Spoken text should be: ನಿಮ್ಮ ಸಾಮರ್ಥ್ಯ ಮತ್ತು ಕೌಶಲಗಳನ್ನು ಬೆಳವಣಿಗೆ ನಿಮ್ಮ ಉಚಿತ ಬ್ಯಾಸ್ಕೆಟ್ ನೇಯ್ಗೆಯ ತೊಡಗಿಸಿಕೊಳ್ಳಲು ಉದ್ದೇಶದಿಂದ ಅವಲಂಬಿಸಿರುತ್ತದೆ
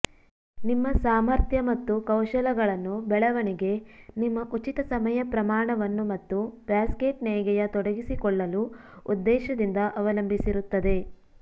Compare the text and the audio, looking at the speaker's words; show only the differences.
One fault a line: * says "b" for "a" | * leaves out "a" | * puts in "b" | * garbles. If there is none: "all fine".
* puts in "ಸಮಯ ಪ್ರಮಾಣವನ್ನು ಮತ್ತು"